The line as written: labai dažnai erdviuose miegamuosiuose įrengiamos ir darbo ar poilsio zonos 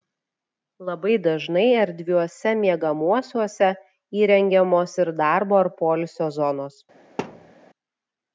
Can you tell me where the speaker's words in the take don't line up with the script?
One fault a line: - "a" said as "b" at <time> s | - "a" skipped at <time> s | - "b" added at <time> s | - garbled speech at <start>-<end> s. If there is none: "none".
none